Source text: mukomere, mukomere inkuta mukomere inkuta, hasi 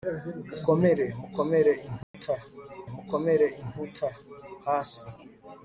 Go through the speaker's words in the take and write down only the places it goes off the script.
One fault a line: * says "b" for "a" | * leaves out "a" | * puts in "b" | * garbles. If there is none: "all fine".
all fine